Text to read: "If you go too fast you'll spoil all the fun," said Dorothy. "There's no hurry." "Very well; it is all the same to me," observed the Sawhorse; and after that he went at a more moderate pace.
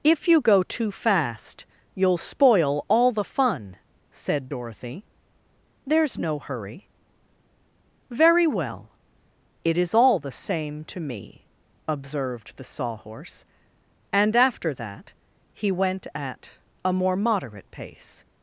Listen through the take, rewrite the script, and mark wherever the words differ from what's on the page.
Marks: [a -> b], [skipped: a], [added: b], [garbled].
"If you go too fast you'll spoil all the fun," said Dorothy. "There's no hurry." "Very well; it is all the same to me," observed the Sawhorse; and after that he went at a more moderate pace.